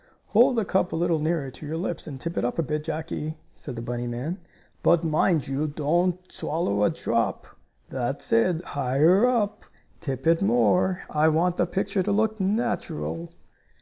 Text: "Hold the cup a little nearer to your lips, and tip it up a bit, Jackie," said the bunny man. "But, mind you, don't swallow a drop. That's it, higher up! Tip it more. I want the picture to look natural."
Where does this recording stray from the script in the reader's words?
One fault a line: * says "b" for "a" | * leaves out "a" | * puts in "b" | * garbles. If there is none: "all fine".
all fine